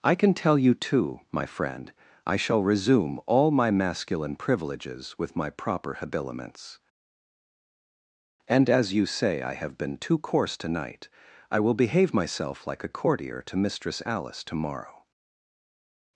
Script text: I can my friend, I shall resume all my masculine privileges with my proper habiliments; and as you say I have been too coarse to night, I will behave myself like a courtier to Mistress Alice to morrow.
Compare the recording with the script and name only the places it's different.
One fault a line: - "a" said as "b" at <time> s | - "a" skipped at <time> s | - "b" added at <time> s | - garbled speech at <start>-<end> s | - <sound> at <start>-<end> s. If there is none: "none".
- "tell you too" added at 0.3 s